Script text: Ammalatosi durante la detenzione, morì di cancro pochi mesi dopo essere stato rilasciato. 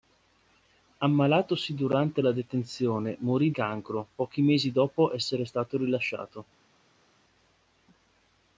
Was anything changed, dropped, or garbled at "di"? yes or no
yes